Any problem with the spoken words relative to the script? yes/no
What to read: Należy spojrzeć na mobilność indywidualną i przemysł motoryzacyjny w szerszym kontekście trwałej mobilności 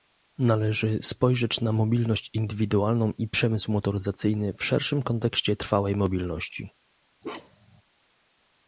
no